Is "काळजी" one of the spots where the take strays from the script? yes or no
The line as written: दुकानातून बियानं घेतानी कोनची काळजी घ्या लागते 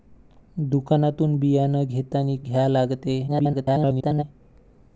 yes